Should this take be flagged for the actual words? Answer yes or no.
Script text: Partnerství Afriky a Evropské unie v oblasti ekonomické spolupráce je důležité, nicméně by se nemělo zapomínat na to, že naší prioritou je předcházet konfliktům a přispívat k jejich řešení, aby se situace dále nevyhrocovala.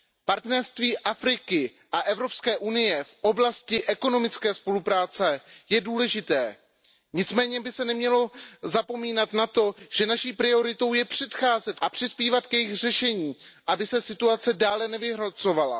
yes